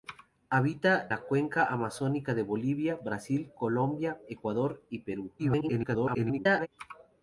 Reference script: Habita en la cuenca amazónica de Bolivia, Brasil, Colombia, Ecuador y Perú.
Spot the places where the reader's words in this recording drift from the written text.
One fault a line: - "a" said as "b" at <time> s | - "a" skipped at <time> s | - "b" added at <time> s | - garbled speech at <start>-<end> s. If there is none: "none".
- "en" skipped at 1.1 s
- garbled speech at 5.4-6.7 s